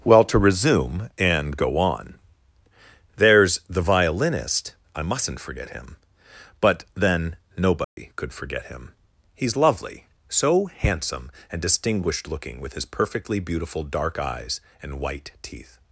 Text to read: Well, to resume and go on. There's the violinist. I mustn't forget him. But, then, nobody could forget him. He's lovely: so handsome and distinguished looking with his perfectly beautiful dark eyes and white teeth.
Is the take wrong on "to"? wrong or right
right